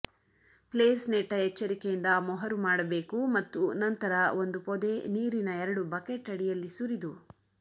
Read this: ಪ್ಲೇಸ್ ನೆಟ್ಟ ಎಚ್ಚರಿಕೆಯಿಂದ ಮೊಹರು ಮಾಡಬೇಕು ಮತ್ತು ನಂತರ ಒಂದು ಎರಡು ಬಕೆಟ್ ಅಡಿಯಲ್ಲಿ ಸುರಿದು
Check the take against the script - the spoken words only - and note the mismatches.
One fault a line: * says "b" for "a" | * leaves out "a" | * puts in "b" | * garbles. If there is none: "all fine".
* puts in "ಪೊದೆ ನೀರಿನ"